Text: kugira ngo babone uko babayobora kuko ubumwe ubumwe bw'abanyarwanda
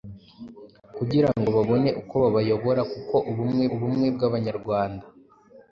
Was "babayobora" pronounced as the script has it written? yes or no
yes